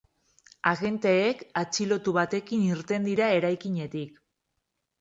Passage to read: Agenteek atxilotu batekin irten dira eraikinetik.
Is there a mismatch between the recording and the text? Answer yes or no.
no